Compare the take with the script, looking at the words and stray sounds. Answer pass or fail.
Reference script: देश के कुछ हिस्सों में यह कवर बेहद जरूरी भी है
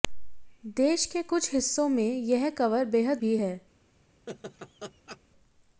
fail